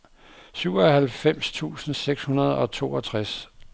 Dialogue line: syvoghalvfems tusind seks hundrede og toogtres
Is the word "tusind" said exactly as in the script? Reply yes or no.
yes